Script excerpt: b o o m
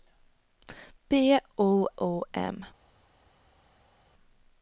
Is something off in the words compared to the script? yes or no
no